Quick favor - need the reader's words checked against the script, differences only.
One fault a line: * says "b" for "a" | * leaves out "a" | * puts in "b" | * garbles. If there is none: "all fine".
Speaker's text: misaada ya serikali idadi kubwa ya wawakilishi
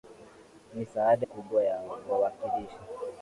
* leaves out "ya serikali idadi"